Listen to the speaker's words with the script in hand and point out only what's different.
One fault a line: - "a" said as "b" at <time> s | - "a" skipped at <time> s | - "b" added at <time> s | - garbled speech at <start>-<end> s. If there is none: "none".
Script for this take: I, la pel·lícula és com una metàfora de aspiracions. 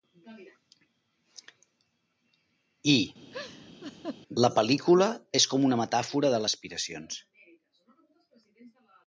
none